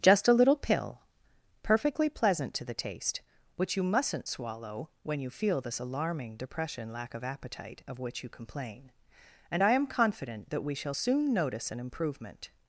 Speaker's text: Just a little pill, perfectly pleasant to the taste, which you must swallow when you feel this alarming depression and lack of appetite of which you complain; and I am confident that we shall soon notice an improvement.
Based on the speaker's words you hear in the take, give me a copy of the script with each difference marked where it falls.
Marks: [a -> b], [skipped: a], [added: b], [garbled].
Just a little pill, perfectly pleasant to the taste, which you [must -> mustn't] swallow when you feel this alarming depression [skipped: and] lack of appetite of which you complain; and I am confident that we shall soon notice an improvement.